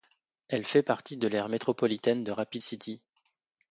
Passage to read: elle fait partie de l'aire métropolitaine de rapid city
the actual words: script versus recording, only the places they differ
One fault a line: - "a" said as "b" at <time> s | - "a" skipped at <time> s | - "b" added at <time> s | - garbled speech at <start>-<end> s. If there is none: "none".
none